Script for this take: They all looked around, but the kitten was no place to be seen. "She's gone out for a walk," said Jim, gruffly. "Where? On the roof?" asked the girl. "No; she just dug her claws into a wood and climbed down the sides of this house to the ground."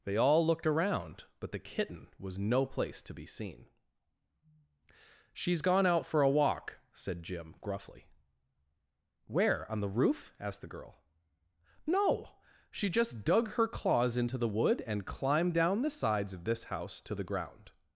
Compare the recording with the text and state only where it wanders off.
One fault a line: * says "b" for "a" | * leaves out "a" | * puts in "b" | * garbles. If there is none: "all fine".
* says "the" for "a"